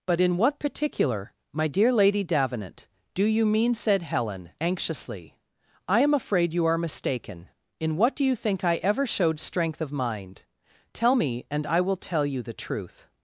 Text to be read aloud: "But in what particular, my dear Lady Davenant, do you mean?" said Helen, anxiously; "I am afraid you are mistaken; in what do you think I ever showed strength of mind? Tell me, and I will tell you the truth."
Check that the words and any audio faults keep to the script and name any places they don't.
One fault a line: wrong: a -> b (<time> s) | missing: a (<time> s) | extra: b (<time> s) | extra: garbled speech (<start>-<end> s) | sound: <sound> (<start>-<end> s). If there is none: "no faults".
no faults